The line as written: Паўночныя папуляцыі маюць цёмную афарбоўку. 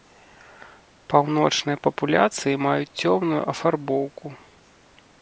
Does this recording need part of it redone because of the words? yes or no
no